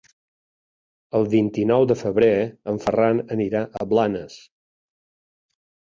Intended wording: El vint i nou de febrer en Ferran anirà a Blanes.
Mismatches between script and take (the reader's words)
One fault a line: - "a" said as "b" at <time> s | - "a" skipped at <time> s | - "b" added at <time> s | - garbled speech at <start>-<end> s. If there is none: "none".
none